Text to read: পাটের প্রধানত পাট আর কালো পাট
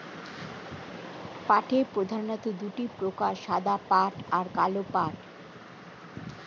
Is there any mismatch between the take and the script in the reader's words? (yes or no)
yes